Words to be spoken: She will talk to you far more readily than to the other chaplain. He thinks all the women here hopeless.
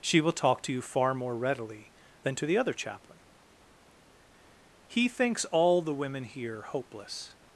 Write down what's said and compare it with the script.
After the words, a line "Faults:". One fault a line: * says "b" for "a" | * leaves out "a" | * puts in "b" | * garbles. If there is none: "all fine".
She will talk to you far more readily than to the other chaplain. He thinks all the women here hopeless.
Faults:
all fine